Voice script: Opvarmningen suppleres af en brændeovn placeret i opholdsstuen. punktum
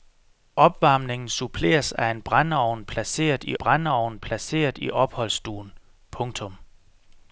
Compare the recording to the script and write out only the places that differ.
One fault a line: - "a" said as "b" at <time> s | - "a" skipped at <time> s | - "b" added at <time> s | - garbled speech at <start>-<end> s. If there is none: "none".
- "brændeovn placeret i" added at 3.6 s